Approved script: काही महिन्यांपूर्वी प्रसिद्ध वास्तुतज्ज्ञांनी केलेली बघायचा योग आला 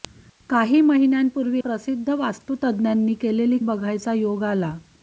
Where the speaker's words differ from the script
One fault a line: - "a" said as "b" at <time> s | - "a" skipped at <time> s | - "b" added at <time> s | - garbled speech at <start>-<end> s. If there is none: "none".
none